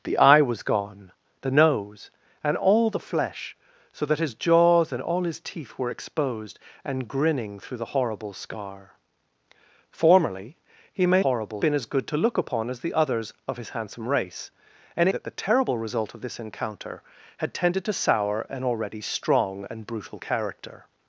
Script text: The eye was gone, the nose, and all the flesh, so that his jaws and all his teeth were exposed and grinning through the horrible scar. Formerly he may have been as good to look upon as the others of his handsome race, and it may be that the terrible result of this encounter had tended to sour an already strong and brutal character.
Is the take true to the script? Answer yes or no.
no